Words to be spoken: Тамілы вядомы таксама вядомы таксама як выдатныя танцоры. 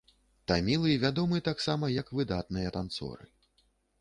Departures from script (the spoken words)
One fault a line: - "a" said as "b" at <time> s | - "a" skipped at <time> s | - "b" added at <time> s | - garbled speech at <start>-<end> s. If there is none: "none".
- "вядомы таксама" skipped at 1.9 s